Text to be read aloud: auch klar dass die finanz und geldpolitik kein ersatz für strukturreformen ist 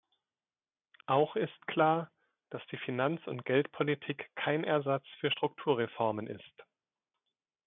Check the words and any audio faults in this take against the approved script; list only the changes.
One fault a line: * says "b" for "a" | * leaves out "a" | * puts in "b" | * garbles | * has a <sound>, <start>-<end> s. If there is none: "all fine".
* puts in "ist"